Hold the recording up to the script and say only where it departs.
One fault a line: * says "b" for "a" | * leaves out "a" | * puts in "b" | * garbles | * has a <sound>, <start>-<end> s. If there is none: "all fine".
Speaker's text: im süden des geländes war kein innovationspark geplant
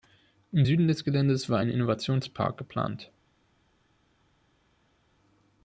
* says "ein" for "kein"